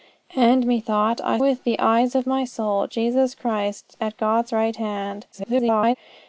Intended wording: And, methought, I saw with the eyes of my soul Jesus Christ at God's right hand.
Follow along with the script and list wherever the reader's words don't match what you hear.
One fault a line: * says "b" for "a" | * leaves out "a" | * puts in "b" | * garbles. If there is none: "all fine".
* leaves out "saw"
* garbles